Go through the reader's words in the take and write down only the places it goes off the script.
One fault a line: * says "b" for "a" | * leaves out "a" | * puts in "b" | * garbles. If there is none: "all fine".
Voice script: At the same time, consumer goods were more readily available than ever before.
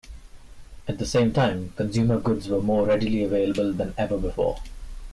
all fine